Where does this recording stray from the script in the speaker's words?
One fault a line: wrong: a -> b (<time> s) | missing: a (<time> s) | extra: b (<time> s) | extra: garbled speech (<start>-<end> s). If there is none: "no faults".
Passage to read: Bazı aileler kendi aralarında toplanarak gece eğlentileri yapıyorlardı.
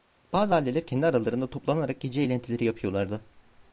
no faults